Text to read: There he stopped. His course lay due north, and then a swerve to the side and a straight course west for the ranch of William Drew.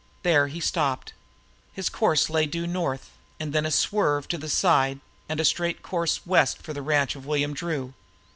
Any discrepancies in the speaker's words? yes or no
no